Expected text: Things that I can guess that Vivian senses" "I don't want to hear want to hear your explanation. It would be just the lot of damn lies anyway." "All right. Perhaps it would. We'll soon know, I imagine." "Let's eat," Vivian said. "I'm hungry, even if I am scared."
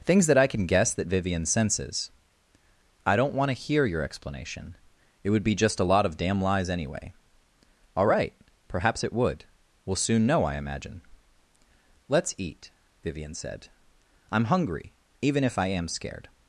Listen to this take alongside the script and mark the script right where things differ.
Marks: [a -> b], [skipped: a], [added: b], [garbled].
Things that I can guess that Vivian senses" "I don't want to hear [skipped: want to hear] your explanation. It would be just [the -> a] lot of damn lies anyway." "All right. Perhaps it would. We'll soon know, I imagine." "Let's eat," Vivian said. "I'm hungry, even if I am scared."